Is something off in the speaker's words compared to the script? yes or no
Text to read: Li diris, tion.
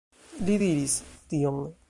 no